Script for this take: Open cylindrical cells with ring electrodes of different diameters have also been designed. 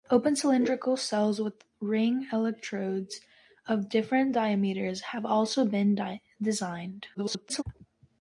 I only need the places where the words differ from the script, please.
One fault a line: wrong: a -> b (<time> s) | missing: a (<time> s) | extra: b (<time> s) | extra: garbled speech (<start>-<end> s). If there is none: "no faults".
extra: garbled speech (7.1-7.6 s)